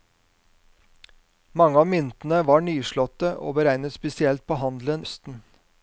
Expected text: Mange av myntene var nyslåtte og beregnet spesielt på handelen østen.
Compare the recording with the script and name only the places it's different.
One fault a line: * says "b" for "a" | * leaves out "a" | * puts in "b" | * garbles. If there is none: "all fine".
all fine